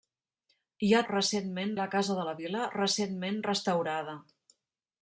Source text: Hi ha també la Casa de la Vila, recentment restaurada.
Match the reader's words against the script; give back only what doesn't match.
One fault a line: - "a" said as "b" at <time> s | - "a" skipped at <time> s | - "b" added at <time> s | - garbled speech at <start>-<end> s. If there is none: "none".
- "també" said as "recentment" at 1.1 s